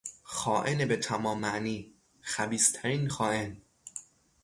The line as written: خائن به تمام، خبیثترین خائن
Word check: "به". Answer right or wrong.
right